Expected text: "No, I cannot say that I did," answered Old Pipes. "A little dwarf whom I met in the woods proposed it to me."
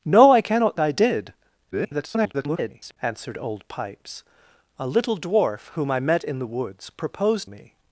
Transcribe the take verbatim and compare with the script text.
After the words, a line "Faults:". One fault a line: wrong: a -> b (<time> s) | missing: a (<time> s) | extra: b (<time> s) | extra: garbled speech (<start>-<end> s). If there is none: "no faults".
"No, I cannot I did," [garbled] answered Old Pipes. "A little dwarf whom I met in the woods proposed me."
Faults:
missing: say that (0.8 s)
extra: garbled speech (1.7-3.0 s)
missing: it to (7.5 s)